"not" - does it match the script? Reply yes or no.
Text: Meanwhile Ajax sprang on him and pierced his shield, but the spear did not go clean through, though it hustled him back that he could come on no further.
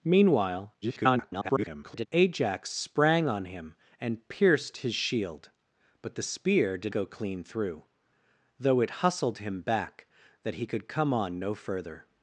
no